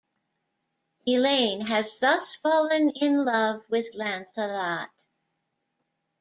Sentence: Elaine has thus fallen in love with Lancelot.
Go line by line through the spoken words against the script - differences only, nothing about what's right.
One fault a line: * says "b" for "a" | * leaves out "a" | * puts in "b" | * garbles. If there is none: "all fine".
all fine